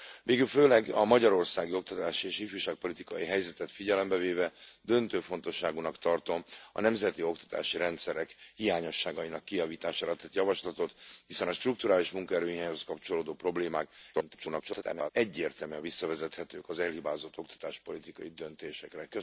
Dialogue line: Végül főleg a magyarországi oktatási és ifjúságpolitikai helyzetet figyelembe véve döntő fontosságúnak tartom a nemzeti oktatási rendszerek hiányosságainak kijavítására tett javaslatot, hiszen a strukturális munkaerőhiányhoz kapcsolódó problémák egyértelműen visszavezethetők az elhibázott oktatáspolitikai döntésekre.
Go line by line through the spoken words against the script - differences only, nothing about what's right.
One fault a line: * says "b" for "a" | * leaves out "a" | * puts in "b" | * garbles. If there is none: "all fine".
* garbles